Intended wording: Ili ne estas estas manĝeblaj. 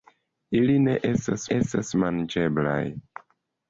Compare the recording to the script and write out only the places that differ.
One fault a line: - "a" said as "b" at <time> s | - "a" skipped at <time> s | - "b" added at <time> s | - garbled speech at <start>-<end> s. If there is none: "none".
none